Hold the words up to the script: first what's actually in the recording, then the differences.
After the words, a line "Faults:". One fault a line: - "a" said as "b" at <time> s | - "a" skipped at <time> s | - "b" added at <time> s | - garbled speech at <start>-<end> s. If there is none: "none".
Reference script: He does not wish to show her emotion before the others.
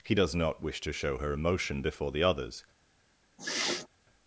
He does not wish to show her emotion before the others.
Faults:
none